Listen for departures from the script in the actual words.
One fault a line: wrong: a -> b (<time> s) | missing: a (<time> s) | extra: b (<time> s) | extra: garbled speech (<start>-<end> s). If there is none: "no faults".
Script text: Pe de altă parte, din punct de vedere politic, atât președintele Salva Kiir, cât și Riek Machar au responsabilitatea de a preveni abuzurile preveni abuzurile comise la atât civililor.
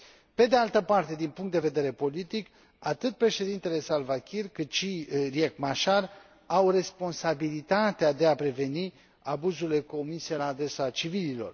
missing: preveni abuzurile (9.8 s)
wrong: atât -> adresa (10.5 s)